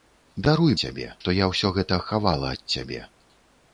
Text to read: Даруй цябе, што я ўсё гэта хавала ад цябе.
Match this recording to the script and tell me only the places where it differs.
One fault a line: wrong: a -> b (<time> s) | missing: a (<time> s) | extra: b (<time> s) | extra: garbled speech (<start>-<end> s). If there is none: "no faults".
no faults